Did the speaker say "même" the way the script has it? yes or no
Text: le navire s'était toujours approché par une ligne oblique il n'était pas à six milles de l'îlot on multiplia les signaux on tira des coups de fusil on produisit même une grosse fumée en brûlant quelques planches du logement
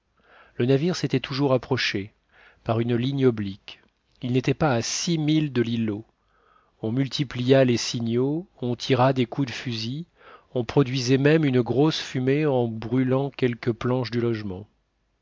yes